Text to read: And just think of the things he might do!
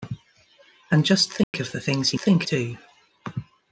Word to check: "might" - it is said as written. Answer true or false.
false